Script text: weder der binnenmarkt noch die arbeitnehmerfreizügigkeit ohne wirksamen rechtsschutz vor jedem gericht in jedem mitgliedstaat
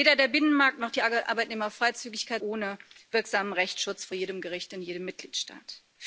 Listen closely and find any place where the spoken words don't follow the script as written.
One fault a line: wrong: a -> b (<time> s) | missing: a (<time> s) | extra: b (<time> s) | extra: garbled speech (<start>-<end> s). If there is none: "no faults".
no faults